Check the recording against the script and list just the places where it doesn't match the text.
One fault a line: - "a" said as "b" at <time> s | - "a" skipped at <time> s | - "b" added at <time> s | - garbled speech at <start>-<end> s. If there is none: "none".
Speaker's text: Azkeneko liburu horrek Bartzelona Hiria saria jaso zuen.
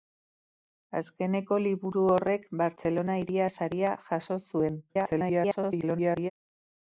- garbled speech at 4.9-6.3 s